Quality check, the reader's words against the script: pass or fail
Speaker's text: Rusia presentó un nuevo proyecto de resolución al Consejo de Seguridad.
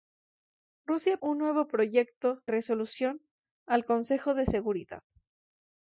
fail